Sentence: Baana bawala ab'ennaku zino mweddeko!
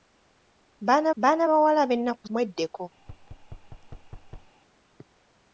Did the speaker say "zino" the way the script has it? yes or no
no